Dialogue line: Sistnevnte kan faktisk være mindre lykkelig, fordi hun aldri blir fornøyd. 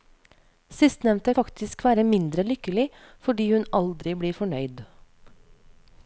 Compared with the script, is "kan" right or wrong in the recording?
wrong